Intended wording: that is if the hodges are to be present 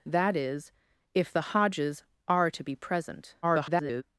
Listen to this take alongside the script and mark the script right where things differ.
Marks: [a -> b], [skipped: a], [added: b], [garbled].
that is if the hodges are to be present [garbled]